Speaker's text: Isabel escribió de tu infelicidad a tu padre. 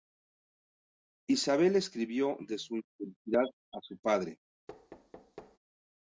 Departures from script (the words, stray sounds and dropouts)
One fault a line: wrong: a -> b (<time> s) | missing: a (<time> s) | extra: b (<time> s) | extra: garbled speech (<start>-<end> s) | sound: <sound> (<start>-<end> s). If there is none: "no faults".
wrong: tu -> su (2.6 s)
wrong: tu -> su (3.8 s)
sound: thud (4.7-5.6 s)